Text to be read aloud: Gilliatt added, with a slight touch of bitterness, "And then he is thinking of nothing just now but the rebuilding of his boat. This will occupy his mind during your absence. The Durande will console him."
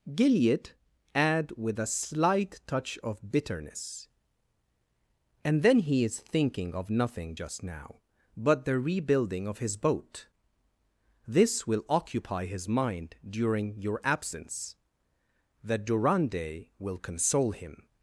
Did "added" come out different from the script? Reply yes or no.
yes